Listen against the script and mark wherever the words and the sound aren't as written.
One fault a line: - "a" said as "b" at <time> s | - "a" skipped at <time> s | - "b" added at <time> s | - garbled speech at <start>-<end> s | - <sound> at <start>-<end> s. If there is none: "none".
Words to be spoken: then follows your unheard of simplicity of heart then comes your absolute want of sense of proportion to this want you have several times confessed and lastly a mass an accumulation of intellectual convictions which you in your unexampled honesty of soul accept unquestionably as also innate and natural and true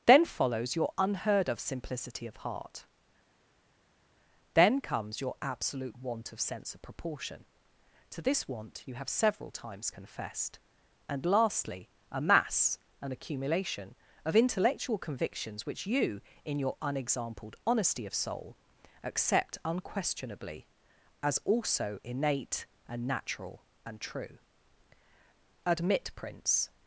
- "admit prince" added at 25.6 s